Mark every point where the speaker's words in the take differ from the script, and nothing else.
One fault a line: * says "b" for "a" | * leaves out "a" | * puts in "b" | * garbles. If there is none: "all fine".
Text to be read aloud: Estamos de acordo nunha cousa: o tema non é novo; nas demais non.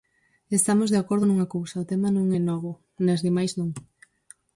all fine